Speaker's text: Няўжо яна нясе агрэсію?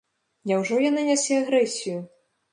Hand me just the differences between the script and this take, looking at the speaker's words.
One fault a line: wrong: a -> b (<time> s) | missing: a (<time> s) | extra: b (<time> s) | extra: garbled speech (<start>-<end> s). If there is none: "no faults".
no faults